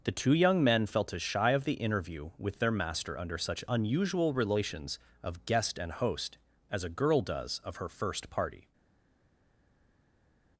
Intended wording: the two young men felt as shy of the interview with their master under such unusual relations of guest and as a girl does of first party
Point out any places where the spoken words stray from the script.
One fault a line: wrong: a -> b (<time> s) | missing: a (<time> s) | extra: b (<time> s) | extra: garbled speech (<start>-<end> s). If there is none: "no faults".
extra: host (5.9 s)
extra: her (7.8 s)